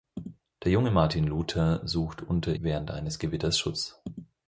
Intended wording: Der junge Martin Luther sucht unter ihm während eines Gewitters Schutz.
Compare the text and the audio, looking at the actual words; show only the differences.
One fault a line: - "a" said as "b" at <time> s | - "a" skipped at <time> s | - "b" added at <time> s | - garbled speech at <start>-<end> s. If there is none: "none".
- "ihm" skipped at 2.5 s